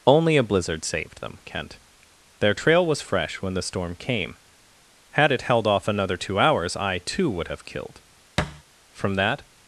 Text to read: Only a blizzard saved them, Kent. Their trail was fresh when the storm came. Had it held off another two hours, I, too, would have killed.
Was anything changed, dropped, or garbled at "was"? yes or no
no